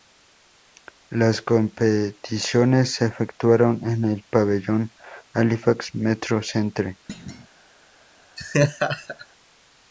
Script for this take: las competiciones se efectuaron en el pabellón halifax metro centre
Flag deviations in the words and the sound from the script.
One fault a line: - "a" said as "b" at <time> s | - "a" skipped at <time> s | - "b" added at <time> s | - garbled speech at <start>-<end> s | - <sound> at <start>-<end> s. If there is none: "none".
- thud at 7.1-7.5 s
- laugh at 8.4-9.3 s